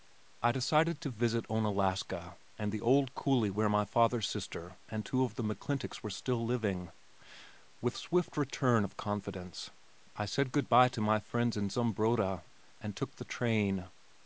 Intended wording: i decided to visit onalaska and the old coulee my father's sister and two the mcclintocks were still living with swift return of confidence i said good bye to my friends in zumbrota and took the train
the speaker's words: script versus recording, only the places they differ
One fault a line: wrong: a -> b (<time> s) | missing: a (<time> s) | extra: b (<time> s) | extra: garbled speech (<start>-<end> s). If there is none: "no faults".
extra: where (3.5 s)
extra: of (5.2 s)